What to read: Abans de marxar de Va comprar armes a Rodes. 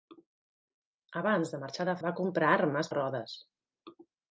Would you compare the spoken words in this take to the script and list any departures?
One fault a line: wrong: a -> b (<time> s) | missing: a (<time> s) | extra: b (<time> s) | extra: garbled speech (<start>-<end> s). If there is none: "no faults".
no faults